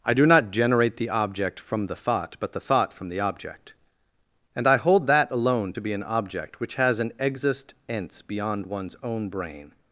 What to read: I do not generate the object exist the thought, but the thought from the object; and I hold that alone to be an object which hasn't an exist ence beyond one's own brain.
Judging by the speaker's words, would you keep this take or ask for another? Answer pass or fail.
fail